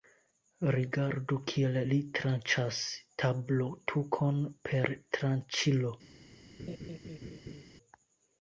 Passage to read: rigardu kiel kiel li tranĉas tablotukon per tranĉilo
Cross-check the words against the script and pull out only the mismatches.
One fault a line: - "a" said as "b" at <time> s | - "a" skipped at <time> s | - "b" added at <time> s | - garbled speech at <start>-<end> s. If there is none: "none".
- "kiel" skipped at 1.8 s